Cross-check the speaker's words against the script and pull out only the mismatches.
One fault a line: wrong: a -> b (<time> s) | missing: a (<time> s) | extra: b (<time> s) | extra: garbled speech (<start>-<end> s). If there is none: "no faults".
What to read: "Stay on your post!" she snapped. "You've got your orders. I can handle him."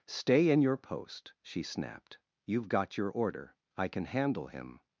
wrong: on -> in (0.5 s)
wrong: orders -> order (3.1 s)